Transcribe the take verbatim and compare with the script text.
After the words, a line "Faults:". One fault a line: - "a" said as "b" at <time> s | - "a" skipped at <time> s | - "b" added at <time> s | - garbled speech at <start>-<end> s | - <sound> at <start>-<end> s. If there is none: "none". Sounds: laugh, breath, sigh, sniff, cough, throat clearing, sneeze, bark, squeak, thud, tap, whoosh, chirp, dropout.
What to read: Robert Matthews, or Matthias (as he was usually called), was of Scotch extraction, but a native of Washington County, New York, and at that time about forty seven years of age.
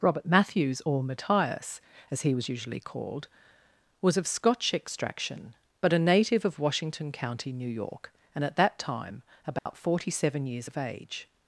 Robert Matthews, or Matthias (as he was usually called), was of Scotch extraction, but a native of Washington County, New York, and at that time about forty seven years of age.
Faults:
- dropout at 9.6-9.7 s